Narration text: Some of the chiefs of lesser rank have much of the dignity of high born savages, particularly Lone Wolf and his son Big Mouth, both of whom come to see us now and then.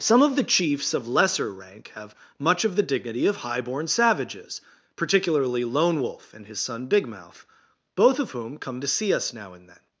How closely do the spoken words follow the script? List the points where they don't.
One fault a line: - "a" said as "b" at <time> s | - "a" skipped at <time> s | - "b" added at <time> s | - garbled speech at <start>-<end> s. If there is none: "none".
none